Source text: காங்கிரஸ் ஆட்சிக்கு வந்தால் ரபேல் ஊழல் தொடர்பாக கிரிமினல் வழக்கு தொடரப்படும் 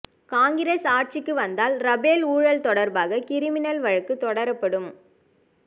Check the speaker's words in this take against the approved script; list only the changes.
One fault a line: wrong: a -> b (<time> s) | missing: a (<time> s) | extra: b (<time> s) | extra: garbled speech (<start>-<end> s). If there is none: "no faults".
no faults